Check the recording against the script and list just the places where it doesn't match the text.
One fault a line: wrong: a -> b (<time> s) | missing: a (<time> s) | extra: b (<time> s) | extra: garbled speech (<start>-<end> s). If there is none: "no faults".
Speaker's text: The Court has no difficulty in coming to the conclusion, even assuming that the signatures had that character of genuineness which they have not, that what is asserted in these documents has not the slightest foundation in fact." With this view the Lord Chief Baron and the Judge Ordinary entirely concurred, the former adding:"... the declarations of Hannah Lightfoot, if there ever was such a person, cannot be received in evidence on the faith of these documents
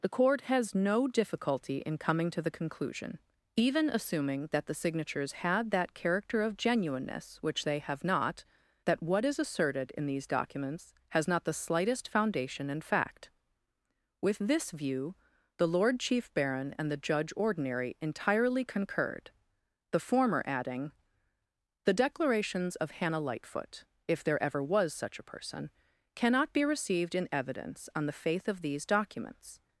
no faults